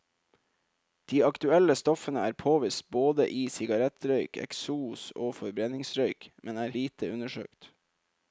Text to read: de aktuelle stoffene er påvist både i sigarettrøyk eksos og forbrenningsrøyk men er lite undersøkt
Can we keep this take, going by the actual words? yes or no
yes